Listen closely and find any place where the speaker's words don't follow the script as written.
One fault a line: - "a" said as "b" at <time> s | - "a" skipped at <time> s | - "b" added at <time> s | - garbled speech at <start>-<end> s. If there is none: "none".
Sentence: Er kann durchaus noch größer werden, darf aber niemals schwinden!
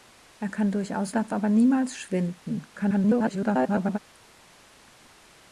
- "noch größer werden" skipped at 1.1 s
- garbled speech at 2.7-4.0 s